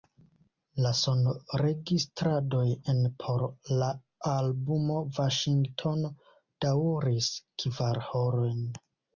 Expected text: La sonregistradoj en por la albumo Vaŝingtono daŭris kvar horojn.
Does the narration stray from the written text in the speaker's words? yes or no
no